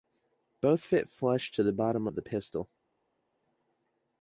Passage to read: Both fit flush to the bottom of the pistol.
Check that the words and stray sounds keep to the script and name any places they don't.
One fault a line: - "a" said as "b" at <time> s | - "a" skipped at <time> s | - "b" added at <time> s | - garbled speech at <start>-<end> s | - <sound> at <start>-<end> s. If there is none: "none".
none